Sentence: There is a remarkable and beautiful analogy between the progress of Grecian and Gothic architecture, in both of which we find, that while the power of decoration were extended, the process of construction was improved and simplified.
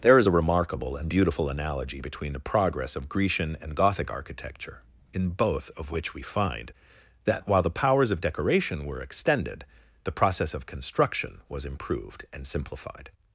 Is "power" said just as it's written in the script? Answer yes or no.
no